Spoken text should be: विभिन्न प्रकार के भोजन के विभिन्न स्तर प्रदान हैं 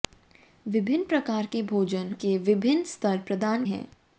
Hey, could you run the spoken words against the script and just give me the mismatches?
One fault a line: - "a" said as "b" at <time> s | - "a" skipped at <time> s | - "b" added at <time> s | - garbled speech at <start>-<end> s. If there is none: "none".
none